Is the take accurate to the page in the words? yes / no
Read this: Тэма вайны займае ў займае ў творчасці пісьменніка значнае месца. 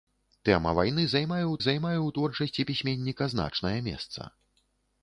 yes